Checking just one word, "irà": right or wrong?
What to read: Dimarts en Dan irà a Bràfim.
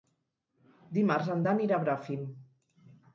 right